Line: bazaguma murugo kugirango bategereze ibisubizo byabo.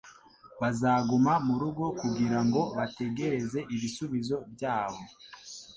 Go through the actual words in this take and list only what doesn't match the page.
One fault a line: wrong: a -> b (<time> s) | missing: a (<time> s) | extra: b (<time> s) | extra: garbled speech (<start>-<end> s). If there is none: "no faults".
no faults